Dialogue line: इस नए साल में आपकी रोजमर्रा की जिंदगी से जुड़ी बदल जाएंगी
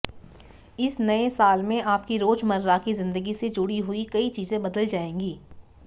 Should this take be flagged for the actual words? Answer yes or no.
yes